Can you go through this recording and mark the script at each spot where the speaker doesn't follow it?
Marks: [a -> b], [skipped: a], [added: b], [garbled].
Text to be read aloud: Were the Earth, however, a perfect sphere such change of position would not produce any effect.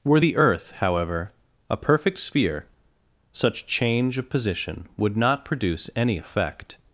Were the Earth, however, a perfect sphere such change of position would not produce any effect.